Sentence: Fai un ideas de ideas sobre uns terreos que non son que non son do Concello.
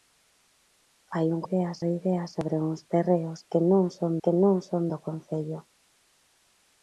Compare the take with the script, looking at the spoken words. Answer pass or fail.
pass